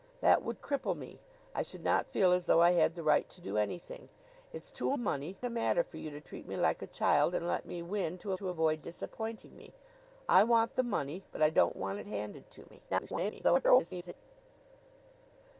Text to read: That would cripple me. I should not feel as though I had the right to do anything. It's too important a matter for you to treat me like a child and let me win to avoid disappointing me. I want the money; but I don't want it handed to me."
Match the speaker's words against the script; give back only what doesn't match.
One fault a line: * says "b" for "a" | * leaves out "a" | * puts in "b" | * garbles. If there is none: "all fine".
* says "money" for "important"
* puts in "to"
* garbles